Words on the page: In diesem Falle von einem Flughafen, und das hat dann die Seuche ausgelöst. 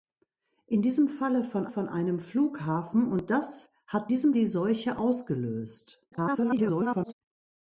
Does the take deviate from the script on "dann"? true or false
true